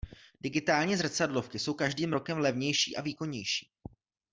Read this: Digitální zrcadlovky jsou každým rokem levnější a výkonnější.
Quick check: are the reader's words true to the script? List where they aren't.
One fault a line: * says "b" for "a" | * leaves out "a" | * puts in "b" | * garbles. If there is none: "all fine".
all fine